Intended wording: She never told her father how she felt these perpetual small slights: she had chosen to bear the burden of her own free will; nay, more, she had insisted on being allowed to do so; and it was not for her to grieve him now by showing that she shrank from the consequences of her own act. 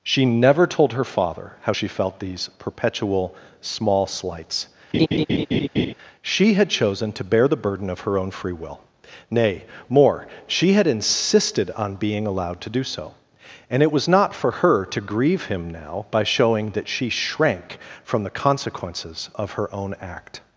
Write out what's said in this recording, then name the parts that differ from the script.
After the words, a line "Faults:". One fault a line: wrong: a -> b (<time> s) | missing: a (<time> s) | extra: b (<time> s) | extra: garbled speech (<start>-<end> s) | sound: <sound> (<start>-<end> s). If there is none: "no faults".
She never told her father how she felt these perpetual small slights: she had chosen to bear the burden of her own free will; nay, more, she had insisted on being allowed to do so; and it was not for her to grieve him now by showing that she shrank from the consequences of her own act.
Faults:
sound: laugh (4.9-5.9 s)